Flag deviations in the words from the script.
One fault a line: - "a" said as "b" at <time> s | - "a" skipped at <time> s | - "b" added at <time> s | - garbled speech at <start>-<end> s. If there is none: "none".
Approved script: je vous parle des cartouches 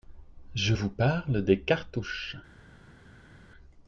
none